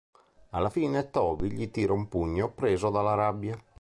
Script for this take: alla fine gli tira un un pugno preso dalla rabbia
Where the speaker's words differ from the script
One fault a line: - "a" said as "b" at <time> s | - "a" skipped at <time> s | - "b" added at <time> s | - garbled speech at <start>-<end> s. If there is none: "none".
- "toby" added at 1.1 s
- "un" skipped at 2.1 s